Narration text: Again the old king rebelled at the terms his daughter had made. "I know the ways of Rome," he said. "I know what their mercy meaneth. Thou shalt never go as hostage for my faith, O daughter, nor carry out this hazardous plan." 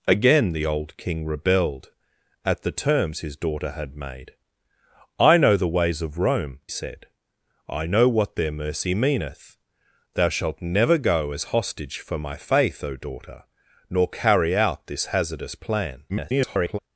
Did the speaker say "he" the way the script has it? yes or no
no